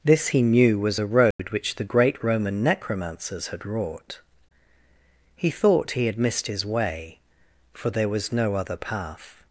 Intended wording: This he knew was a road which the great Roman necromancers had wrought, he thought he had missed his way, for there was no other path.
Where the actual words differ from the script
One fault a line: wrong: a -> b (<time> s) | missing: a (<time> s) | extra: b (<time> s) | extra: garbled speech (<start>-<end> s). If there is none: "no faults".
no faults